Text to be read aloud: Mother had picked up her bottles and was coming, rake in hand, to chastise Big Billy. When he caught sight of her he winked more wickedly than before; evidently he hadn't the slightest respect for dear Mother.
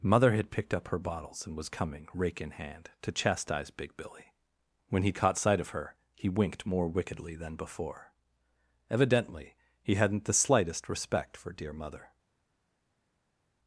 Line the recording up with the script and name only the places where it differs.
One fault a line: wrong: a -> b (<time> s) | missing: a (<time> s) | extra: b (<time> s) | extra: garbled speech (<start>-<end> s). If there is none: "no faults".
no faults